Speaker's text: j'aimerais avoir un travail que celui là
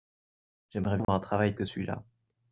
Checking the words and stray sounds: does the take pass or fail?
fail